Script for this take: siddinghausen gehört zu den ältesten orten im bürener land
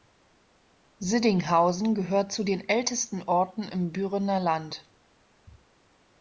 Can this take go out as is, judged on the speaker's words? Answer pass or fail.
pass